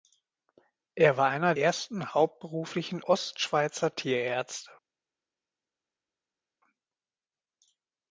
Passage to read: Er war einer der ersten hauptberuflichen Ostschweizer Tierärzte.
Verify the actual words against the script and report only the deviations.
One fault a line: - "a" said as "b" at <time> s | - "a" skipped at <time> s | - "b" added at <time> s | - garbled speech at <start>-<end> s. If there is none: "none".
- "der" skipped at 1.5 s